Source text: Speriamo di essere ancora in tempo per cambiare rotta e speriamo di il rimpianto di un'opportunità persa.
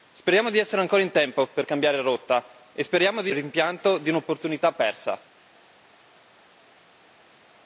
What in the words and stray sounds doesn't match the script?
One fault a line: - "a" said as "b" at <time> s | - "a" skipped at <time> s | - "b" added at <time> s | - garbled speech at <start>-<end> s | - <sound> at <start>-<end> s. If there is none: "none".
none